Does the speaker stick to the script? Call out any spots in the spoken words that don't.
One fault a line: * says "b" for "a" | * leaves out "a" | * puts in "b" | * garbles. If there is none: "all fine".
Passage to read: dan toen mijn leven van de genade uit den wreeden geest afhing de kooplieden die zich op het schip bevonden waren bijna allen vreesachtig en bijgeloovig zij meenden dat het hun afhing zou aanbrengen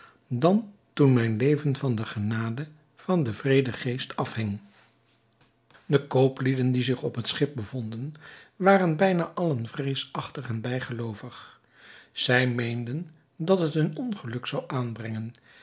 * says "van" for "uit"
* says "ongeluk" for "afhing"